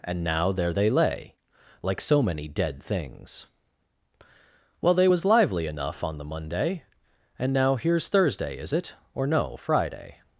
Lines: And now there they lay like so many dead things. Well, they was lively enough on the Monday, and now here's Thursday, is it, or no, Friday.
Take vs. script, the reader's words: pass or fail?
pass